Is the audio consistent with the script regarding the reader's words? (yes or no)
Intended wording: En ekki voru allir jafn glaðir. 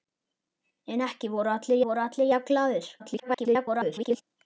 no